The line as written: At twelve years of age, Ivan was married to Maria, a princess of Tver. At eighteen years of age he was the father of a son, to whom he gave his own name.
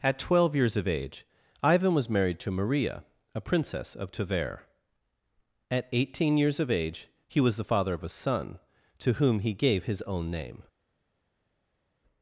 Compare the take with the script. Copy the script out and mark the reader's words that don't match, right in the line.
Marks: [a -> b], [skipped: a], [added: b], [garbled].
At twelve years of age, Ivan was married to Maria, a princess of Tver. At eighteen years of age he was the father of a son, to whom he gave his own name.